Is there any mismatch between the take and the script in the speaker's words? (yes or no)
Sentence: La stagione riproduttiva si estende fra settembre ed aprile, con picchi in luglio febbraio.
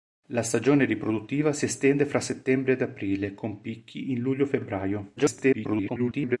yes